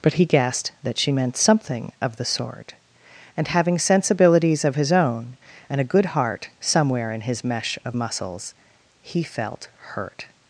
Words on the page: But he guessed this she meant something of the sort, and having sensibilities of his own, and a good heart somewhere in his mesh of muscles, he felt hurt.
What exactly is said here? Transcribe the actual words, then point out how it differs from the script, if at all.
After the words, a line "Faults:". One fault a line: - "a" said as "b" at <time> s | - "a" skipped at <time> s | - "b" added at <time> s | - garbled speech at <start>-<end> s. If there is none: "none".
But he guessed that she meant something of the sort, and having sensibilities of his own, and a good heart somewhere in his mesh of muscles, he felt hurt.
Faults:
- "this" said as "that" at 0.8 s